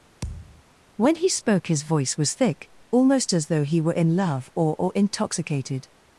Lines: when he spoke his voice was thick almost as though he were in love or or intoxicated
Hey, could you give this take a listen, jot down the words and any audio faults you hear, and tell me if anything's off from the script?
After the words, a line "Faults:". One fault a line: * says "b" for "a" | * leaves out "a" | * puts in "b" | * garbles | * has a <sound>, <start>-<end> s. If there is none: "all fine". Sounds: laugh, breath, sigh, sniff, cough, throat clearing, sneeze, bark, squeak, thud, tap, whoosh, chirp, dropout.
when he spoke his voice was thick almost as though he were in love or or intoxicated
Faults:
* has a thud, 0.2-0.6 s